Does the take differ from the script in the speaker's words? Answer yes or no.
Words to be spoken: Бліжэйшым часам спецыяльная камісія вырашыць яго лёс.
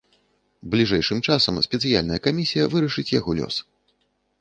no